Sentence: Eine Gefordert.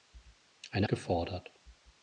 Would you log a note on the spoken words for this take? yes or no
no